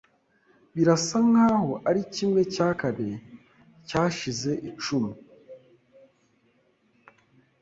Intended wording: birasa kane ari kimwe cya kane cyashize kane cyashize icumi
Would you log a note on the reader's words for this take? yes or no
yes